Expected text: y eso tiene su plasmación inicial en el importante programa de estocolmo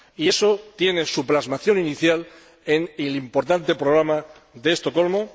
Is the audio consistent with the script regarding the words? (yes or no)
yes